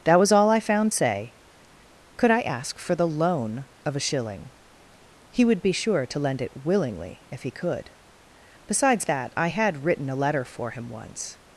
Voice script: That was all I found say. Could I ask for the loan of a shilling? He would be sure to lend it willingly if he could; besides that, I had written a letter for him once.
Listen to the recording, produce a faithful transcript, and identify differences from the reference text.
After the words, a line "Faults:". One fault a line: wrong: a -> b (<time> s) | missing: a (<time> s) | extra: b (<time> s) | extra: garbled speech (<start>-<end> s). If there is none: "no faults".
That was all I found say. Could I ask for the loan of a shilling? He would be sure to lend it willingly if he could; besides that, I had written a letter for him once.
Faults:
no faults